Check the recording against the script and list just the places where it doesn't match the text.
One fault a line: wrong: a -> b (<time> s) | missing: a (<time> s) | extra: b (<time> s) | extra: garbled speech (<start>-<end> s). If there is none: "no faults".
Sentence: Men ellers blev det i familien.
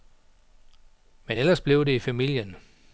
no faults